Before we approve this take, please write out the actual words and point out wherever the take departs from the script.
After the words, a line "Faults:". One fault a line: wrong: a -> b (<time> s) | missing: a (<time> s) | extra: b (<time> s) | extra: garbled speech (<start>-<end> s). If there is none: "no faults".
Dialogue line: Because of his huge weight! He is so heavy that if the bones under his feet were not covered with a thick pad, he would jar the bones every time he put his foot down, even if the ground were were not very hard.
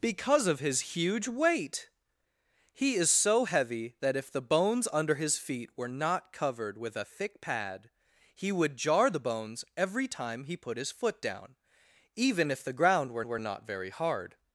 Because of his huge weight! He is so heavy that if the bones under his feet were not covered with a thick pad, he would jar the bones every time he put his foot down, even if the ground were were not very hard.
Faults:
no faults